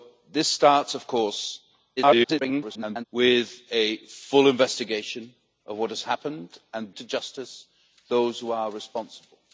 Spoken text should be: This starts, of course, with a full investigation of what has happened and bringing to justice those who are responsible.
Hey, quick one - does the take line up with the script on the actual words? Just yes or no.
no